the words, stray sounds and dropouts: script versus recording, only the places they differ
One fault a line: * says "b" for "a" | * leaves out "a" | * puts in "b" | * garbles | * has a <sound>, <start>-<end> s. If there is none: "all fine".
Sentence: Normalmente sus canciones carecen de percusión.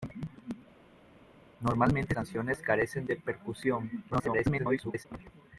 * leaves out "sus"
* garbles